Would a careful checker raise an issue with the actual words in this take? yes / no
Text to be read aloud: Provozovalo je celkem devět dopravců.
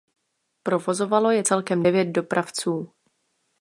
no